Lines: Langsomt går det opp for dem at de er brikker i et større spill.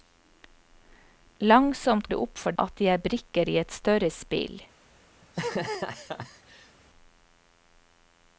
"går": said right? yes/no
no